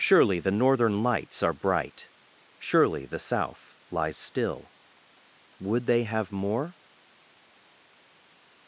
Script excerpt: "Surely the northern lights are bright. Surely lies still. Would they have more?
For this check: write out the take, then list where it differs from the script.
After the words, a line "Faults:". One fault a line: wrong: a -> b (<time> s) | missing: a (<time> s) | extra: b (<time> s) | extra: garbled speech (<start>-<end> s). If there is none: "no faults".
"Surely the northern lights are bright. Surely the South lies still. Would they have more?
Faults:
extra: the South (3.0 s)